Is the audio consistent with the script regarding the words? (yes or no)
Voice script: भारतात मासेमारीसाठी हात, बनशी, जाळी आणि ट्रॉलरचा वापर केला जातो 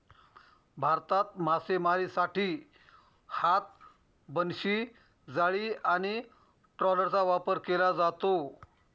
yes